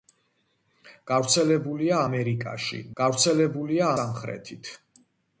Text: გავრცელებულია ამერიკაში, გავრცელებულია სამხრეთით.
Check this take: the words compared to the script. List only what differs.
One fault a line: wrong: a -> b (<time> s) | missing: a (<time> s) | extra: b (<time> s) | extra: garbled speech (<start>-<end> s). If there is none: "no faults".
no faults